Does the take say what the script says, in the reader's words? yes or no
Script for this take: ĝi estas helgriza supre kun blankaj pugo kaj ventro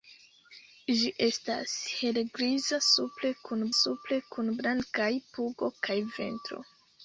no